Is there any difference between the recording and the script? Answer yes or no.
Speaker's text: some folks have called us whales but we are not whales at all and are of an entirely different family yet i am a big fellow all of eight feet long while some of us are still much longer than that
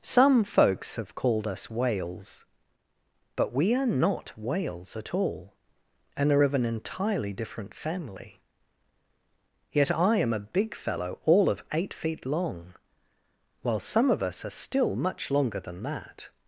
no